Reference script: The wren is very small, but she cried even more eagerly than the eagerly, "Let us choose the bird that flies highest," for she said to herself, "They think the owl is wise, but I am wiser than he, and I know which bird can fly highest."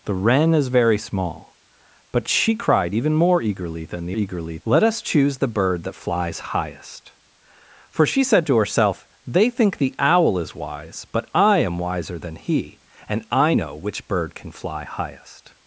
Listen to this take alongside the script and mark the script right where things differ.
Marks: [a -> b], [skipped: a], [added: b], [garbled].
The wren is very small, but she cried even more eagerly than the eagerly, "Let us choose the bird that flies highest," for she said to herself, "They think the owl is wise, but I am wiser than he, and I know which bird can fly highest."